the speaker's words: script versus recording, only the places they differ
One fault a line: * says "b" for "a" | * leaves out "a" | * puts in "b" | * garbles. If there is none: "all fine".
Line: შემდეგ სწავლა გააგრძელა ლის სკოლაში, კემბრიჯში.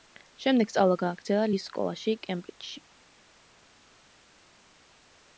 all fine